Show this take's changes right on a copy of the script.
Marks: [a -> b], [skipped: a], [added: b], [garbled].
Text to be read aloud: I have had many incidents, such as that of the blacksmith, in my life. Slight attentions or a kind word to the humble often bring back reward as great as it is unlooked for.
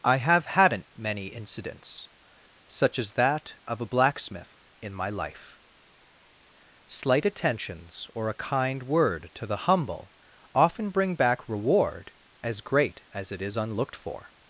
I have [had -> hadn't] many incidents, such as that of [the -> a] blacksmith, in my life. Slight attentions or a kind word to the humble often bring back reward as great as it is unlooked for.